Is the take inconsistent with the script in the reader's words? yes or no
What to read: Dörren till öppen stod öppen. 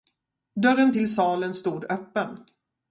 yes